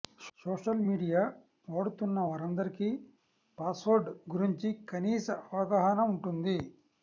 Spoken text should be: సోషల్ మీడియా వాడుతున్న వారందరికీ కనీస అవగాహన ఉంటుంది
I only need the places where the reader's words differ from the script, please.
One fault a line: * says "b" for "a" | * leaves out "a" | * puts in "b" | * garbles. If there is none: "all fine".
* puts in "పాస్వర్డ్ గురించి"